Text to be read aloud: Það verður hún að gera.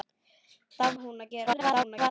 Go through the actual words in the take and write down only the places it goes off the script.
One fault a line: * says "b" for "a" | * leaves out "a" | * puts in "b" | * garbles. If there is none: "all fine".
* leaves out "verður"
* garbles